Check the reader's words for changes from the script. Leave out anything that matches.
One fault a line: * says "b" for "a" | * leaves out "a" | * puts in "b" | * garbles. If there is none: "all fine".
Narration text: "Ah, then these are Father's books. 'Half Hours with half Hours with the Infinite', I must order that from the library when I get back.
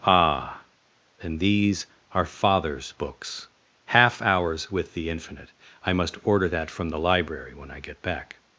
* leaves out "half Hours with"